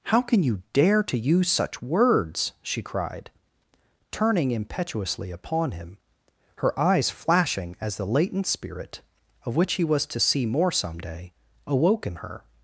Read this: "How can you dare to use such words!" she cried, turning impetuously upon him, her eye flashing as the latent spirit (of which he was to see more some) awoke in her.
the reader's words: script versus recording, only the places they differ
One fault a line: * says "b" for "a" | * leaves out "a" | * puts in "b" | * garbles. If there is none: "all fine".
* says "eyes" for "eye"
* puts in "day"